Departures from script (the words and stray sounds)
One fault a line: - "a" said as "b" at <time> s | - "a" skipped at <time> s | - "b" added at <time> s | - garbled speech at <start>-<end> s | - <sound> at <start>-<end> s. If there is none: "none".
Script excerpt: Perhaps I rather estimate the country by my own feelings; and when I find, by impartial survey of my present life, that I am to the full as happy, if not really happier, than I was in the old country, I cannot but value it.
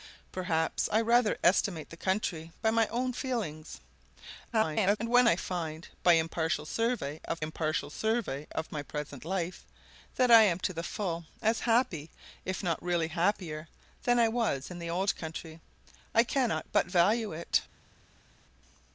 - garbled speech at 4.5-5.0 s
- "impartial survey of" added at 7.4 s